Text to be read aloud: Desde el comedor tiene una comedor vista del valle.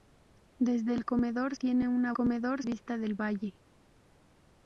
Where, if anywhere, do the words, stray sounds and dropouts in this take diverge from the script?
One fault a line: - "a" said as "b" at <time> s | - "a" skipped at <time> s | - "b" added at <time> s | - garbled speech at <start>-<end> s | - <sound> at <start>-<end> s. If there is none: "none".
none